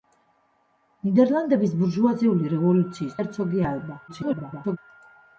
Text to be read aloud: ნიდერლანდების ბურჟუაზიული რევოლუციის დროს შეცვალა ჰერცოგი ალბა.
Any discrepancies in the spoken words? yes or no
yes